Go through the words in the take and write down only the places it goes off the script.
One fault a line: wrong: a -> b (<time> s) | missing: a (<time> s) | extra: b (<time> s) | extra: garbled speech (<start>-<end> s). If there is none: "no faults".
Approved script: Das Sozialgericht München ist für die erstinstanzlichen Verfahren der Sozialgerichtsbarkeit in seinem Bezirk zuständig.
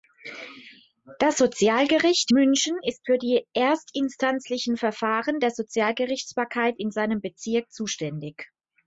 no faults